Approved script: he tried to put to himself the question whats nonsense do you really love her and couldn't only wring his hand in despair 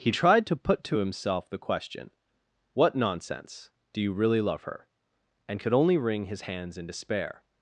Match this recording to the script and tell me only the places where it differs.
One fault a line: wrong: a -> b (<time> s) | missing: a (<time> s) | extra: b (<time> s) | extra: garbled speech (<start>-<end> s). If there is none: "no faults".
wrong: whats -> what (2.7 s)
wrong: couldn't -> could (5.6 s)
wrong: hand -> hands (6.5 s)